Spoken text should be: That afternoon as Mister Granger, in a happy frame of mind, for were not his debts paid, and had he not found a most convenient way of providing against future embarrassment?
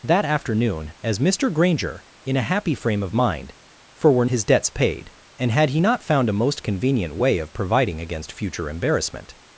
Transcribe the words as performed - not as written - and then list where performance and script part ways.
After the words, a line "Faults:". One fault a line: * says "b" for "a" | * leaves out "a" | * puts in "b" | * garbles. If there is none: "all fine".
That afternoon as Mister Granger, in a happy frame of mind, for were his debts paid, and had he not found a most convenient way of providing against future embarrassment?
Faults:
* leaves out "not"